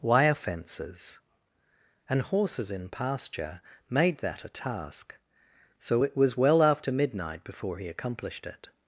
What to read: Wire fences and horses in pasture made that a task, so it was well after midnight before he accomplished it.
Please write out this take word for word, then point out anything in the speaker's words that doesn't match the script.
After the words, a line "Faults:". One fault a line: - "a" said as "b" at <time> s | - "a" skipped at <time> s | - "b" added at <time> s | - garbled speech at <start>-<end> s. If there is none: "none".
Wire fences and horses in pasture made that a task, so it was well after midnight before he accomplished it.
Faults:
none